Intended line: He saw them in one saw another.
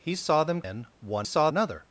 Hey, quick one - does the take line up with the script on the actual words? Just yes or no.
yes